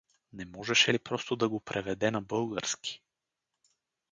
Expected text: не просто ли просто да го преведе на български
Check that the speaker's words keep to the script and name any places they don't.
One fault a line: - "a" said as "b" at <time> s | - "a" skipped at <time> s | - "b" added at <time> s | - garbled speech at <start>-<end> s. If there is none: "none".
- "просто" said as "можеше" at 0.5 s